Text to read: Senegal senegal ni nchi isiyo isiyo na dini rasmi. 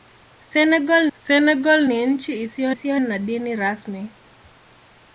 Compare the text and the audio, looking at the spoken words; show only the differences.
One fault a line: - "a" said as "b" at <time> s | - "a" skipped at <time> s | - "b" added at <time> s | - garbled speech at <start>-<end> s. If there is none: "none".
none